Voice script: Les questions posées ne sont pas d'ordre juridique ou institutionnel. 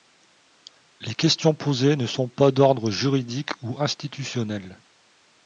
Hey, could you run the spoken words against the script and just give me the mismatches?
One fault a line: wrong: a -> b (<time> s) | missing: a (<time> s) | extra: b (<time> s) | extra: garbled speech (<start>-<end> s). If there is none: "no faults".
no faults